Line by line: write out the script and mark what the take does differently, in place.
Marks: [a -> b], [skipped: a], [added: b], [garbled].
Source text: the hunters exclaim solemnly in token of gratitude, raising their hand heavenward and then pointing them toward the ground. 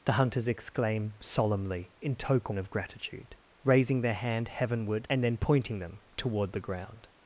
the hunters exclaim solemnly in token of gratitude, raising their hand heavenward and then pointing them toward the ground.